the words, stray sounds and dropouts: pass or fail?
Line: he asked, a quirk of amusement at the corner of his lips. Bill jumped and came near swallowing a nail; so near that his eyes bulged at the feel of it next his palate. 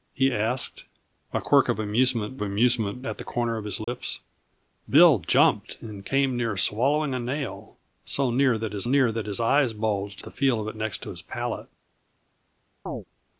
fail